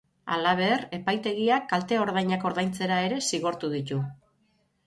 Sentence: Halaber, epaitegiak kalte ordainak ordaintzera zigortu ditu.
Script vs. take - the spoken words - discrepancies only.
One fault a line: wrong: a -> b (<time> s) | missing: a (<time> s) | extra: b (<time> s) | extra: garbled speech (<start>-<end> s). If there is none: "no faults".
extra: ere (3.1 s)